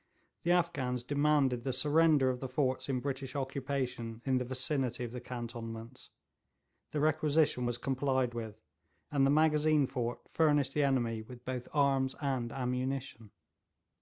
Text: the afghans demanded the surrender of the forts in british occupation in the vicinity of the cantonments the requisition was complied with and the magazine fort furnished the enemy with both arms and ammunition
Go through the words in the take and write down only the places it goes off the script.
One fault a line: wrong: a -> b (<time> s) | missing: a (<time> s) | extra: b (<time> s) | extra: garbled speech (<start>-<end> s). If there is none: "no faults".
no faults